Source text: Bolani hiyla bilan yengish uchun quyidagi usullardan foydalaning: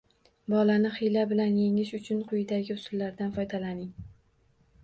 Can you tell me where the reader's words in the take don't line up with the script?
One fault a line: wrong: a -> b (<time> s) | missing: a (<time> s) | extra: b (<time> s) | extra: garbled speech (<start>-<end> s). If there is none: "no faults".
no faults